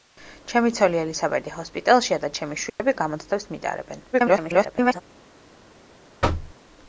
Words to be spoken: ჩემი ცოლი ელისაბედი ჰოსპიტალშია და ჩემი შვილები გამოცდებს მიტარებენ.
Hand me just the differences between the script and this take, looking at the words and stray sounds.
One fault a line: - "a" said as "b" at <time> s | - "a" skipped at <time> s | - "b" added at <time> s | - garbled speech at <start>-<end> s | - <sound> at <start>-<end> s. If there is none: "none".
- dropout at 2.7-2.8 s
- garbled speech at 4.1-5.0 s
- thud at 6.2-6.6 s